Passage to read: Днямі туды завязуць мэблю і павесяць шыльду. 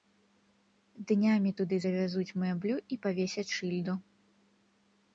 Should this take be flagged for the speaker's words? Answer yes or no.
no